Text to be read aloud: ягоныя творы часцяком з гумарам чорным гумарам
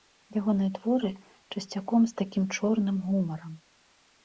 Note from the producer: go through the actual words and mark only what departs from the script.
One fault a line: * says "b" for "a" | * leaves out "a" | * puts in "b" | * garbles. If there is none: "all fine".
* says "такім" for "гумарам"